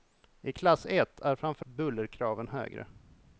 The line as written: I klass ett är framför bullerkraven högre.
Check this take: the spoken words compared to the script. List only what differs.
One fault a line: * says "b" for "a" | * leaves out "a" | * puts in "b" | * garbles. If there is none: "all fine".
all fine